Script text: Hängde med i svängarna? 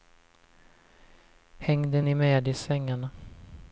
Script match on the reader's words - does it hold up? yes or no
no